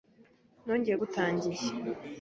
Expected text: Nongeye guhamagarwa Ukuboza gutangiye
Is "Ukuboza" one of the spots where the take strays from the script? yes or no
yes